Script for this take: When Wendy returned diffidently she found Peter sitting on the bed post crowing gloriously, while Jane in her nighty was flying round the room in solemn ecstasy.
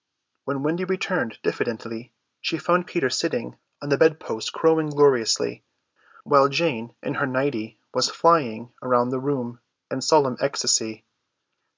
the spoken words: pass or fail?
pass